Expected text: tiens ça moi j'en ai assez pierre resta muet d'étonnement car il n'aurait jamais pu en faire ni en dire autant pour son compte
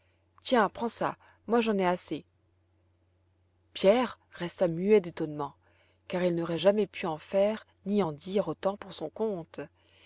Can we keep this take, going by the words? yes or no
no